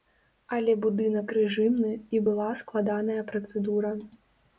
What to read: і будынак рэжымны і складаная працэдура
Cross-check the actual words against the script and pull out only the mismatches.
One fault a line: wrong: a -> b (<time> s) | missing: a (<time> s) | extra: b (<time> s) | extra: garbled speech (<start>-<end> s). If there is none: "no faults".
wrong: і -> але (0.6 s)
extra: была (2.3 s)